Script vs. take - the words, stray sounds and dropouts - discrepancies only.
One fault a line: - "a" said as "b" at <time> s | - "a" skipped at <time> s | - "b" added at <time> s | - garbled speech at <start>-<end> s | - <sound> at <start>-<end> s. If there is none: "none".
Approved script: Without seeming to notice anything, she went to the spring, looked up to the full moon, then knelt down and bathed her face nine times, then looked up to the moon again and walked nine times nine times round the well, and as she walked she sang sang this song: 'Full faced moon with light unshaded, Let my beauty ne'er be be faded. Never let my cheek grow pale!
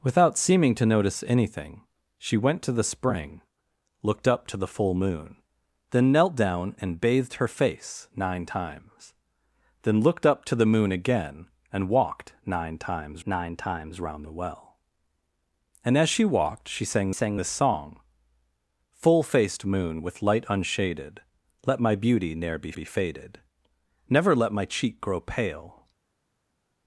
none